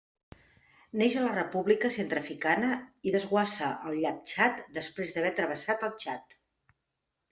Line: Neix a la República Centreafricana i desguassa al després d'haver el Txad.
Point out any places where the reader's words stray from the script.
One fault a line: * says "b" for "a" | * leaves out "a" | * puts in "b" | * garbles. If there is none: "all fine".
* puts in "llac Txad"
* puts in "travessat"